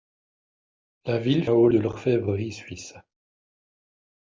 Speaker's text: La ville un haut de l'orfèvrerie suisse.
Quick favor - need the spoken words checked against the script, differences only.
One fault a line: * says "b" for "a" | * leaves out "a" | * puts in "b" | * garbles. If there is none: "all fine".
all fine